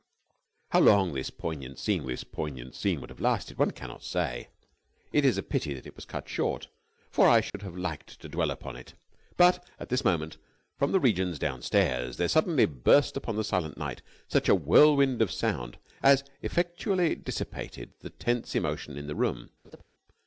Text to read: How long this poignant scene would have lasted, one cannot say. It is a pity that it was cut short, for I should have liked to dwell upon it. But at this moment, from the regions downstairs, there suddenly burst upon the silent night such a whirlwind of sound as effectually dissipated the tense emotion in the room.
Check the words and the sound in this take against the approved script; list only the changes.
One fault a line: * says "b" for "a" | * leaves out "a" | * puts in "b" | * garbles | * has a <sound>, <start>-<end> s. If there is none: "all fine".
* puts in "this poignant scene"
* has a dropout, 7.5-7.5 s
* has a laugh, 19.6-19.8 s